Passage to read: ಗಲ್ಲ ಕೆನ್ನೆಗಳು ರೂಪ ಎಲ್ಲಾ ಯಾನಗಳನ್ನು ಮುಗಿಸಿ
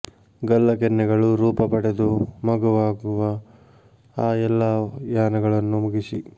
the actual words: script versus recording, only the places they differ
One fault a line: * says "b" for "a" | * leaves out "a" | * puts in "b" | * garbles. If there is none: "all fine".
* puts in "ಪಡೆದು ಮಗುವಾಗುವ ಆ"